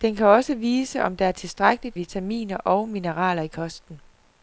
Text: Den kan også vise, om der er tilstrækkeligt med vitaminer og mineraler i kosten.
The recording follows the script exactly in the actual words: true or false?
false